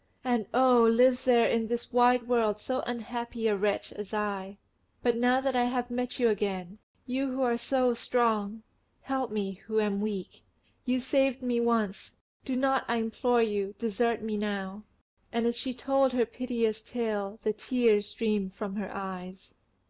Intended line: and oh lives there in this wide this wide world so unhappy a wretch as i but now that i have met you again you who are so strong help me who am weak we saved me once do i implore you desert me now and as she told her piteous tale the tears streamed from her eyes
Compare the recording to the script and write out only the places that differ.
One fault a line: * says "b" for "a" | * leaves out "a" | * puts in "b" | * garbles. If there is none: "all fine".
* leaves out "this wide"
* says "you" for "we"
* puts in "not"